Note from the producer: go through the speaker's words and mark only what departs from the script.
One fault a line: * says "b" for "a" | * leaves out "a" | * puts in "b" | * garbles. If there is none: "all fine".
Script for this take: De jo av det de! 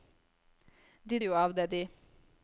all fine